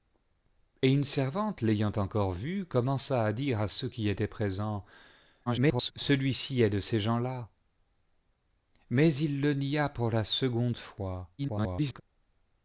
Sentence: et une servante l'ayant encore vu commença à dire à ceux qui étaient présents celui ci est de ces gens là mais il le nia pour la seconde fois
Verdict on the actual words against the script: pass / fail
fail